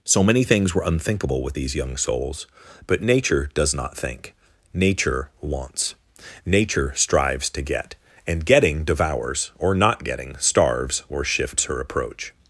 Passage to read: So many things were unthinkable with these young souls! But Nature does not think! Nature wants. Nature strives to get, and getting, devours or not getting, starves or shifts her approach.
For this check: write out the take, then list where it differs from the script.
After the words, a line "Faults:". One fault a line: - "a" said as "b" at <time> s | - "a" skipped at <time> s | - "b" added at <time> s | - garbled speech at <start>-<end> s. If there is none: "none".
So many things were unthinkable with these young souls! But Nature does not think! Nature wants. Nature strives to get, and getting, devours or not getting, starves or shifts her approach.
Faults:
none